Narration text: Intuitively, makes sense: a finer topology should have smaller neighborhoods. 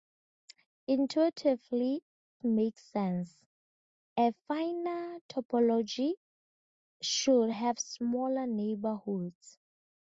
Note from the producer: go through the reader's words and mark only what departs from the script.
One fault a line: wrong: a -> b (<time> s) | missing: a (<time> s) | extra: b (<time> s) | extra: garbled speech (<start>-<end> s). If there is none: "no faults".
no faults